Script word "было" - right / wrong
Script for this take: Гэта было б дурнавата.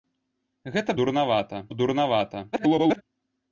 wrong